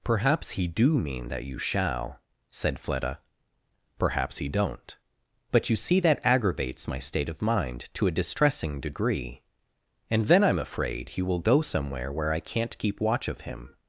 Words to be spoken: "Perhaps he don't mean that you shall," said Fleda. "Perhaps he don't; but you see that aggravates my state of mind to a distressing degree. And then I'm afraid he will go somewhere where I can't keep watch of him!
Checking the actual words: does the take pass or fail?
fail